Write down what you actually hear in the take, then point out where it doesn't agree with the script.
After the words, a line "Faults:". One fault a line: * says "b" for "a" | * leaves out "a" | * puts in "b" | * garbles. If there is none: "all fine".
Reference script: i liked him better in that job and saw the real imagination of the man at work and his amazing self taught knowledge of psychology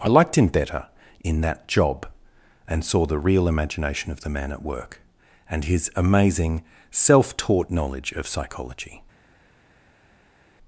i liked him better in that job and saw the real imagination of the man at work and his amazing self taught knowledge of psychology
Faults:
all fine